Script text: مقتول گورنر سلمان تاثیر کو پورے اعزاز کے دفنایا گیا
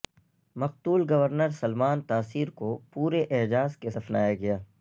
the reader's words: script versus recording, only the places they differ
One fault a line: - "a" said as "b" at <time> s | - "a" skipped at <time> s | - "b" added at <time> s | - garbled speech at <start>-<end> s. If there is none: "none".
none